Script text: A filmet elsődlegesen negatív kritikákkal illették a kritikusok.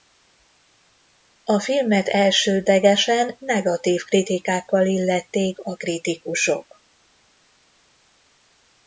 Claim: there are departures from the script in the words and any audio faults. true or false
false